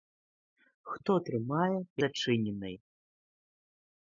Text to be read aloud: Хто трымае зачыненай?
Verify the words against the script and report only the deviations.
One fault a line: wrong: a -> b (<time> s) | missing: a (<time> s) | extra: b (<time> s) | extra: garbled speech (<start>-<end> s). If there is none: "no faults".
no faults